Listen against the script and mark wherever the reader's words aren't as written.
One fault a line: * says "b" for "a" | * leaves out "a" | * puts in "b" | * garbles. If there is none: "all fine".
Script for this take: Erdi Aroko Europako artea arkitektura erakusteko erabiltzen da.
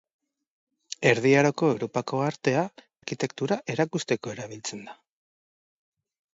all fine